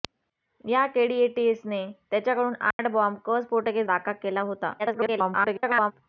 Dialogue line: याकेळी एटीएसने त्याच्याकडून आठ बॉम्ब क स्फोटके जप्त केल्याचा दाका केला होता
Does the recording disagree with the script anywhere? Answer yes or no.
yes